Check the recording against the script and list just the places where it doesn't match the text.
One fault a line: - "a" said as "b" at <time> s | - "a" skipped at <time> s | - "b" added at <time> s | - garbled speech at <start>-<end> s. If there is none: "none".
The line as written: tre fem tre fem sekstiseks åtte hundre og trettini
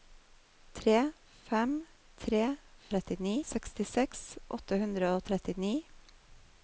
- "fem" said as "trettini" at 2.9 s